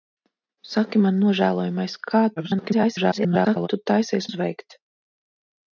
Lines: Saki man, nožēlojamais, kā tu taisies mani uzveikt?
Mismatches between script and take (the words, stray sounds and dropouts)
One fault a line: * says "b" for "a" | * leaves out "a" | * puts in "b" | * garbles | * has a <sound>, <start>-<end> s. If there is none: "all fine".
* garbles
* leaves out "mani"